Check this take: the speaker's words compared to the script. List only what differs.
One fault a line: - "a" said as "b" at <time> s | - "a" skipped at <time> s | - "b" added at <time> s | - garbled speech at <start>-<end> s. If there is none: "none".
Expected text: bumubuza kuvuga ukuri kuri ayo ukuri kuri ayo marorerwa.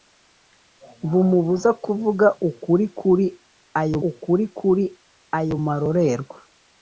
none